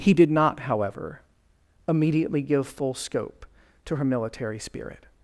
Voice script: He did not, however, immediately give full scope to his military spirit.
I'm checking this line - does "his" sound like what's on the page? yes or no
no